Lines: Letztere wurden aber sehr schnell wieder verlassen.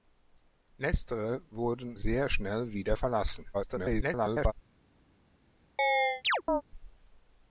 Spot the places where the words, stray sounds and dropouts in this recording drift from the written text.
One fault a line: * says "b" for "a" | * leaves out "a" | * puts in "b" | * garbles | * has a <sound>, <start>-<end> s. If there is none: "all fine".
* leaves out "aber"
* garbles
* has a chirp, 5.8-6.6 s